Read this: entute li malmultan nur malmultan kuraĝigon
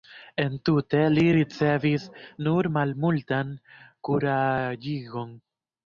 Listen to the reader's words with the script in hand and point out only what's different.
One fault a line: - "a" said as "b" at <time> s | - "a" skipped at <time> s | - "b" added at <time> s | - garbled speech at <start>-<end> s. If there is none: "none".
- "malmultan" said as "ricevis" at 1.4 s